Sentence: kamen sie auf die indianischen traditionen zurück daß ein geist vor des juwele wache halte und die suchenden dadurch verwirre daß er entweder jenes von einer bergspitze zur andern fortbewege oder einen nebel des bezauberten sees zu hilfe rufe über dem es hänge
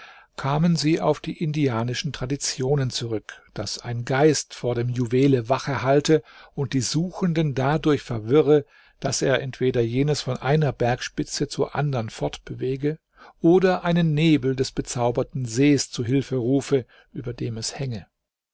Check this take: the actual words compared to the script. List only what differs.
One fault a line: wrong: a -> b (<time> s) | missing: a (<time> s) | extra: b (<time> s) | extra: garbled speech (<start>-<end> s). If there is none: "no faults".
wrong: des -> dem (4.7 s)